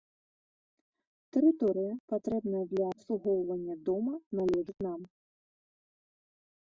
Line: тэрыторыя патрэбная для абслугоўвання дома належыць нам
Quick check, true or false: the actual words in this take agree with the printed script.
true